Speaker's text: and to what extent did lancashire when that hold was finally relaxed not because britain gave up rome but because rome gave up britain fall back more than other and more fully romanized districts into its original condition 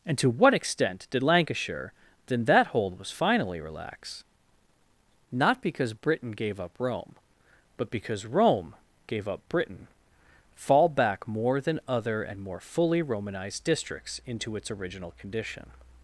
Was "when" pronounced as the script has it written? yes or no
no